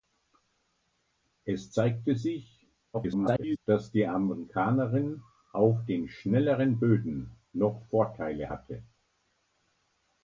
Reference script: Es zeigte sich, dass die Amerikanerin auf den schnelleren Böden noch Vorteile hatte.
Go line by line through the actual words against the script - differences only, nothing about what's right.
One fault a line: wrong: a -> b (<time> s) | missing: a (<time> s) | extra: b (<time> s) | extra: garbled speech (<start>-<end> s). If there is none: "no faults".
extra: garbled speech (2.9-3.6 s)